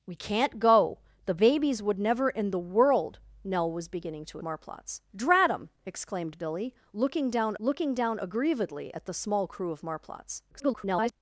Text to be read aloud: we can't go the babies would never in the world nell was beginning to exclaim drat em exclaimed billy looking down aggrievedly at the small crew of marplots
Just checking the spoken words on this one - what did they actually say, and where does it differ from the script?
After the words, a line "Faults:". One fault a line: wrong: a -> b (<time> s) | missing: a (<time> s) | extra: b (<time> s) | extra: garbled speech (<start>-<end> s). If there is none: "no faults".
we can't go the babies would never in the world nell was beginning to marplots drat em exclaimed billy looking down looking down aggrievedly at the small crew of marplots [garbled]
Faults:
wrong: exclaim -> marplots (4.4 s)
extra: looking down (7.6 s)
extra: garbled speech (10.5-11.1 s)